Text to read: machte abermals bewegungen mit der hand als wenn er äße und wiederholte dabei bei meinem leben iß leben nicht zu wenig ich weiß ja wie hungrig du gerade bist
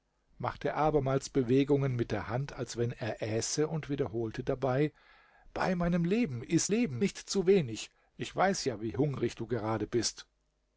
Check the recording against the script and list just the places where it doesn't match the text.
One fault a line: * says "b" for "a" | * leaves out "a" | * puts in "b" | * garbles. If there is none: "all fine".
all fine